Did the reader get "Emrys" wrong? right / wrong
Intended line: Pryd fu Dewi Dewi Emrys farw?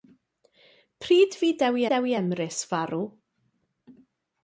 right